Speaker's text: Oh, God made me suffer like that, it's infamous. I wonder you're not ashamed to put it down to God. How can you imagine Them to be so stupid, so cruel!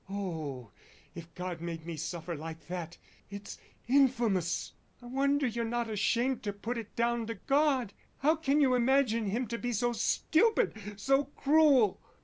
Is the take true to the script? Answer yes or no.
no